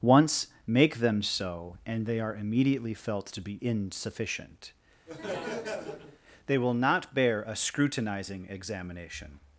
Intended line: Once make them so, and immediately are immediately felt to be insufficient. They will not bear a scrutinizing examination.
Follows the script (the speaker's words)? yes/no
no